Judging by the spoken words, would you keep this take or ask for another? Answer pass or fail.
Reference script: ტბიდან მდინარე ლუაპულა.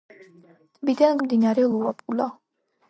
pass